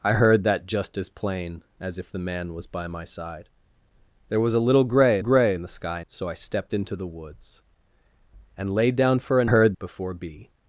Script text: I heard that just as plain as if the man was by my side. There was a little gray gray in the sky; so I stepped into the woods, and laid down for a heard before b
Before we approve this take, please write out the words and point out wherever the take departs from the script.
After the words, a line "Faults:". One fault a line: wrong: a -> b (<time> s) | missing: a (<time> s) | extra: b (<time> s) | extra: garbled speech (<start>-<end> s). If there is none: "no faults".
I heard that just as plain as if the man was by my side. There was a little gray gray in the sky; so I stepped into the woods, and laid down for a heard before b
Faults:
no faults